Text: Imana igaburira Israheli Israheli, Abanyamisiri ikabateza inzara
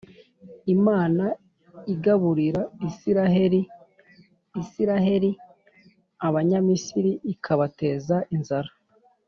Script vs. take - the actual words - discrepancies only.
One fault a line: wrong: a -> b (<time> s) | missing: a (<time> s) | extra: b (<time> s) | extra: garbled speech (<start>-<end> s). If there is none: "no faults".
no faults